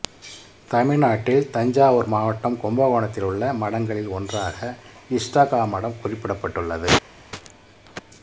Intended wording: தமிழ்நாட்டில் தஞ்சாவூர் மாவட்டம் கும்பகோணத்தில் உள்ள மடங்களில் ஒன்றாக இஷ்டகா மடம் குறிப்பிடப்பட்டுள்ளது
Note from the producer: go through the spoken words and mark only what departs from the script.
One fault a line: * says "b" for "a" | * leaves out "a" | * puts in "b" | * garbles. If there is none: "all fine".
all fine